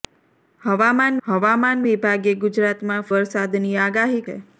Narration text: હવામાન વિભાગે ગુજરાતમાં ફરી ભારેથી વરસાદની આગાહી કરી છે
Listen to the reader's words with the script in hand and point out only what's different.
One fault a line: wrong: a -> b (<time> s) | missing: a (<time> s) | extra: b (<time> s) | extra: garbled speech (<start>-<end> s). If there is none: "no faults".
extra: હવામાન (1.2 s)
missing: ફરી ભારેથી (3.1 s)
missing: કરી (4.3 s)